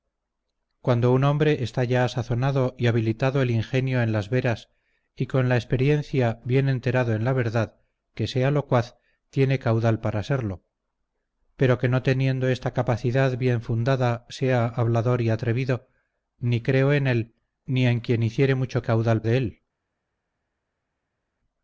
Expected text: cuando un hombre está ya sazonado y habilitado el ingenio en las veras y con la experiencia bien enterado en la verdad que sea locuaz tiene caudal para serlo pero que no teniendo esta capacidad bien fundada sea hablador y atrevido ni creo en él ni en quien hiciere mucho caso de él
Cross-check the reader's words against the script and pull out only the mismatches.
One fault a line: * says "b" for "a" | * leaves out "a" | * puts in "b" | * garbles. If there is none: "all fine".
* says "caudal" for "caso"